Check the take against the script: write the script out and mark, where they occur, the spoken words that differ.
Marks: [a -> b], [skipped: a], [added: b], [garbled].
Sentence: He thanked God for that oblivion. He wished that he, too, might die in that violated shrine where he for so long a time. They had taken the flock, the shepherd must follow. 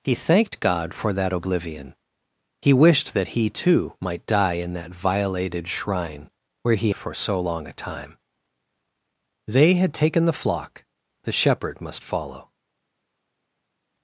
He thanked God for that oblivion. He wished that he, too, might die in that violated shrine where he for so long a time. They had taken the flock, the shepherd must follow.